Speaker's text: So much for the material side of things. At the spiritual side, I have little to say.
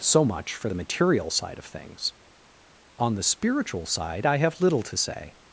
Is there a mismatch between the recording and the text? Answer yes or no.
yes